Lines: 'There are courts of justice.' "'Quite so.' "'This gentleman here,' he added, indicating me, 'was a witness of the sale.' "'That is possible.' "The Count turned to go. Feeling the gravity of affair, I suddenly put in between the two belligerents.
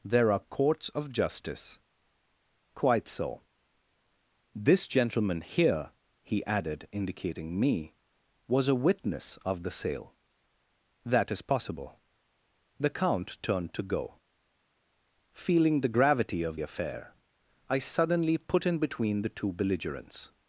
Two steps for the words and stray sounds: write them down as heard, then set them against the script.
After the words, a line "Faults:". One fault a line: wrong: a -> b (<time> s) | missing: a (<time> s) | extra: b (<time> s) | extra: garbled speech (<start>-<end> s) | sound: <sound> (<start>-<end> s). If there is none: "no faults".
'There are courts of justice.' "'Quite so.' "'This gentleman here,' he added, indicating me, 'was a witness of the sale.' "'That is possible.' "The Count turned to go. Feeling the gravity of affair, I suddenly put in between the two belligerents.
Faults:
no faults